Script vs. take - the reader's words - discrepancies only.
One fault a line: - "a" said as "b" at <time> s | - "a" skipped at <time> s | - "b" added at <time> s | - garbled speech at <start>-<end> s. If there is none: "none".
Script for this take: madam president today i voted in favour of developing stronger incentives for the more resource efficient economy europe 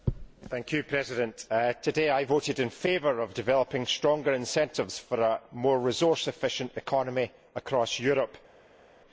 - "the" said as "a" at 5.2 s
- "across" added at 7.5 s